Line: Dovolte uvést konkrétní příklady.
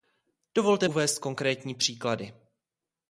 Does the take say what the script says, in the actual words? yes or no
yes